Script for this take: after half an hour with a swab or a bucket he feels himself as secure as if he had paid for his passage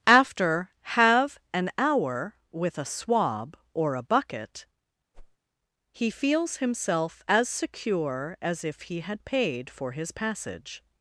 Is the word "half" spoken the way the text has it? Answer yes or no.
no